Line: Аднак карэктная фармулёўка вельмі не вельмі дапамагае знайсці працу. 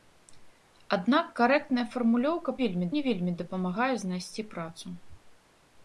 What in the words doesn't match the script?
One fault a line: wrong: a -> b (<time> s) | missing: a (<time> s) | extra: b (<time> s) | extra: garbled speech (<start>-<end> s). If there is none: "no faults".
no faults